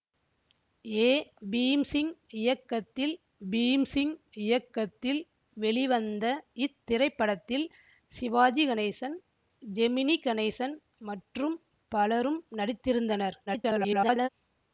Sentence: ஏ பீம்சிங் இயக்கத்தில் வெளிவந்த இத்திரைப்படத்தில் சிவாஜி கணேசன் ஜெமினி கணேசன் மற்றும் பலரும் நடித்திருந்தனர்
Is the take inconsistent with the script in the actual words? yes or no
yes